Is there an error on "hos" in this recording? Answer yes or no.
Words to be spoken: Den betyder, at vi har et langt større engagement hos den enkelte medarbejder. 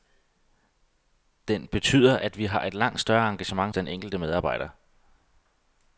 yes